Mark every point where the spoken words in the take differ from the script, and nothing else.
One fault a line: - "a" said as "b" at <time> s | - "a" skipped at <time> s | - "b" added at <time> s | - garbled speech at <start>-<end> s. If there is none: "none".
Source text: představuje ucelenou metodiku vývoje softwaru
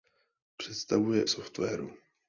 - "ucelenou metodiku vývoje" skipped at 1.2 s